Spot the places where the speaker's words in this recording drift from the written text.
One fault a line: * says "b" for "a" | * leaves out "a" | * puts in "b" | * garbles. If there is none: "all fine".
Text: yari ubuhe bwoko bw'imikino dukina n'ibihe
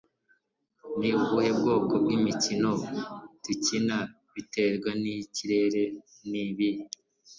* says "ni" for "yari"
* puts in "biterwa nikirere"